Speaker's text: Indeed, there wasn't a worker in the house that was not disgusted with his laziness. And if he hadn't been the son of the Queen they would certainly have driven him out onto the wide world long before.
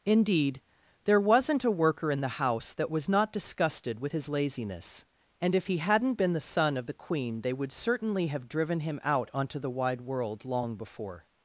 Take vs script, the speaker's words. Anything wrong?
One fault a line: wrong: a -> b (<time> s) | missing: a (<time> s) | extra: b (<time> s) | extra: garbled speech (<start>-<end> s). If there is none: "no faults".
no faults